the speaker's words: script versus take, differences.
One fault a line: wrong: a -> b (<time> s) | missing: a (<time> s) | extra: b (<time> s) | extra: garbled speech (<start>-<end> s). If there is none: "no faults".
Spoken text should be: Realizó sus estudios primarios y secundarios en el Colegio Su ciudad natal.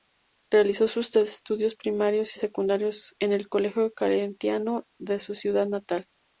extra: Claretiano de (3.9 s)